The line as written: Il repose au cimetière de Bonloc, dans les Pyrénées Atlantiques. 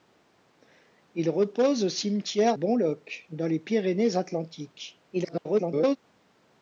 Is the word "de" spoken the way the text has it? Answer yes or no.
no